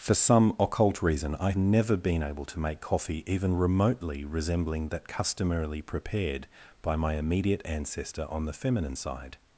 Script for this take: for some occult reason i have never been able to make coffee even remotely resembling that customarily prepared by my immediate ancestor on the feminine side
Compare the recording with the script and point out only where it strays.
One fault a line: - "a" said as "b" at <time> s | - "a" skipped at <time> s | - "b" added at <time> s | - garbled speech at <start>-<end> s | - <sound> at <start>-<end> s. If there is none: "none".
- "have" skipped at 1.5 s